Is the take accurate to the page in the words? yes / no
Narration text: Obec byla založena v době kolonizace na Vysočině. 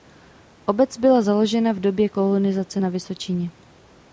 yes